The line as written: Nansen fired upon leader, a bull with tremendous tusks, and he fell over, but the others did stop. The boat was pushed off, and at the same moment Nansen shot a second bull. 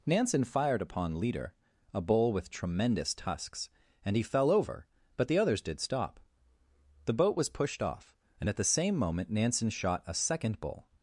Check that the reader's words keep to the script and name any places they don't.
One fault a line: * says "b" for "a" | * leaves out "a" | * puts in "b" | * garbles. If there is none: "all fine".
all fine